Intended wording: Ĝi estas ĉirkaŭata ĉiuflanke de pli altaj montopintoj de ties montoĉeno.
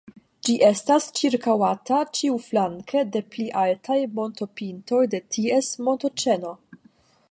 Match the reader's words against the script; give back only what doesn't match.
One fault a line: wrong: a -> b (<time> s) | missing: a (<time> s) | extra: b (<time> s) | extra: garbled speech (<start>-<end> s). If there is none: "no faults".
no faults